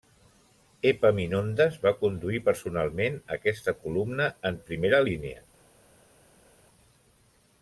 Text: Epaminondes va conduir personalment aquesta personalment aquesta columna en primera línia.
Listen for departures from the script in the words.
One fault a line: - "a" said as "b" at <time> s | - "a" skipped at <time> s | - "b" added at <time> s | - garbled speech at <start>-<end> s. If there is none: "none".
- "personalment aquesta" skipped at 3.8 s